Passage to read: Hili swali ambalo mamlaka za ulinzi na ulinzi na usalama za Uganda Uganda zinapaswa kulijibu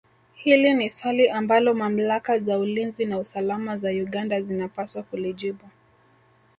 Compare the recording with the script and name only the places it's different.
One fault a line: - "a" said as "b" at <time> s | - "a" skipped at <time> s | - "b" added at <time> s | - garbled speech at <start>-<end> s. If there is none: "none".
- "ni" added at 0.7 s
- "ulinzi na" skipped at 3.2 s
- "Uganda" skipped at 4.4 s